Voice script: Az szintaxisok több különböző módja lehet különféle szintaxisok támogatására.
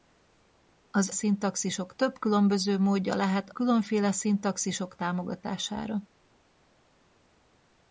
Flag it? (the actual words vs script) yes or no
no